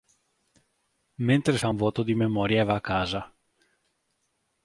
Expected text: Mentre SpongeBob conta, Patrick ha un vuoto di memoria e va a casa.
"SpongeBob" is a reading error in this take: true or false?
true